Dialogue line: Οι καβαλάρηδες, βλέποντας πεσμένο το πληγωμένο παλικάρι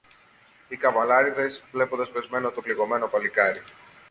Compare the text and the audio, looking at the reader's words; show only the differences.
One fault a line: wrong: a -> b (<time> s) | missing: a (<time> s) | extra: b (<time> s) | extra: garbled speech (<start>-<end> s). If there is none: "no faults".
no faults